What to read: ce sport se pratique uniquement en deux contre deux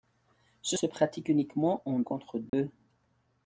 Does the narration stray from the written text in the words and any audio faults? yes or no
yes